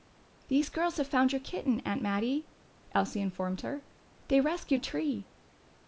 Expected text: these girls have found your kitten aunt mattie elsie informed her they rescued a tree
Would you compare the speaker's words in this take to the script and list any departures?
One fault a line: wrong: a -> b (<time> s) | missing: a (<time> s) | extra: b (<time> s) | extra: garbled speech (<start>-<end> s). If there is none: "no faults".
no faults